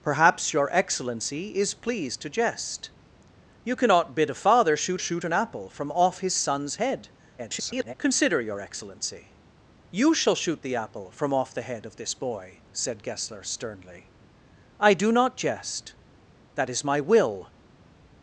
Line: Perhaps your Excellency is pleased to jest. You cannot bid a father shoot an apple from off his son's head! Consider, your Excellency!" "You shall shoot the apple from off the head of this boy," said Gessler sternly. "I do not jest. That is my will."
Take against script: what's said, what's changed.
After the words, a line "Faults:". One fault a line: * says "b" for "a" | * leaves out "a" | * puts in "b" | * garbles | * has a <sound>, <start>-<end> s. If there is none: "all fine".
Perhaps your Excellency is pleased to jest. You cannot bid a father shoot shoot an apple from off his son's head! [garbled] Consider, your Excellency!" "You shall shoot the apple from off the head of this boy," said Gessler sternly. "I do not jest. That is my will."
Faults:
* puts in "shoot"
* garbles